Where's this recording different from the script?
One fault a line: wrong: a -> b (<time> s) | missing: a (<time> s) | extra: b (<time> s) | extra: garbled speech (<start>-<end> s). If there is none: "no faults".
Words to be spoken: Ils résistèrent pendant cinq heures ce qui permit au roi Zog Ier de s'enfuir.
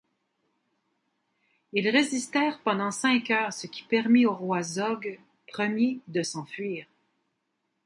no faults